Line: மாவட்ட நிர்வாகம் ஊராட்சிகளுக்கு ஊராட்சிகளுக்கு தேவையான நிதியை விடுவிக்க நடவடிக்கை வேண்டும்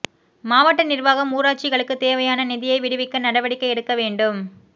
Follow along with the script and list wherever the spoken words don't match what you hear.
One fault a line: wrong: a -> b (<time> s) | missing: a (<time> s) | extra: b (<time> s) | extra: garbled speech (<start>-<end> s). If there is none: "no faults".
missing: ஊராட்சிகளுக்கு (2.0 s)
extra: எடுக்க (3.7 s)